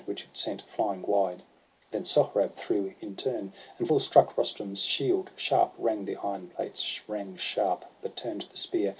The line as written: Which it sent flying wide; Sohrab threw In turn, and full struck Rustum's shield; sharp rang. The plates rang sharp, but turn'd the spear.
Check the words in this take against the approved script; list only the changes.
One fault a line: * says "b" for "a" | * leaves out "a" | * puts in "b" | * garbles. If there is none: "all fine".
* puts in "then"
* puts in "iron"